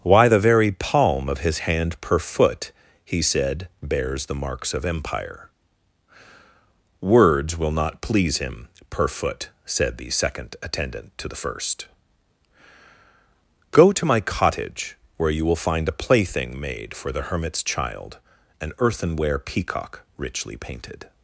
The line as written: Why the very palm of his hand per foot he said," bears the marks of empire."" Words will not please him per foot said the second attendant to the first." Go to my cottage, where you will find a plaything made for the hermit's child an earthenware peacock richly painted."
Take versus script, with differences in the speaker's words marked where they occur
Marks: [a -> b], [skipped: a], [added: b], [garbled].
Why the very palm of his hand per foot he said," bears the marks of empire."" Words will not please him per foot said the second attendant to the first." Go to my cottage, where you will find a plaything made for the hermit's child an earthenware peacock richly painted."